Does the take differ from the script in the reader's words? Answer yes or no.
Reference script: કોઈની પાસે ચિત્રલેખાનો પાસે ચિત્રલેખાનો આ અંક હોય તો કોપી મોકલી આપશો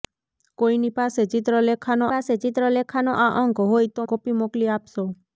no